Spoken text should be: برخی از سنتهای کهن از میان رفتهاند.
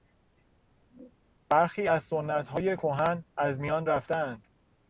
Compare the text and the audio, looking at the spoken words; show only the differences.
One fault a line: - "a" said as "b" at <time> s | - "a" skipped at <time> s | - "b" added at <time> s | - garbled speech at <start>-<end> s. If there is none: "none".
none